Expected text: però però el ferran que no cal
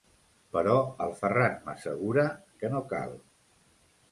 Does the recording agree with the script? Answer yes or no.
no